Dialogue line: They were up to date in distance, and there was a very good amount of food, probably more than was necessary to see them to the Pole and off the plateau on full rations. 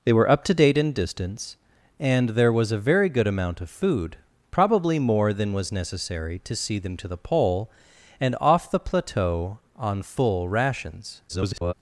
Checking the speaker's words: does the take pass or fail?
fail